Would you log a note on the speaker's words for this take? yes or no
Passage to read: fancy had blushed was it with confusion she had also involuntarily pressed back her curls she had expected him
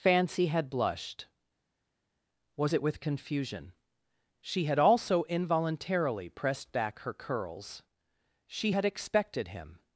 no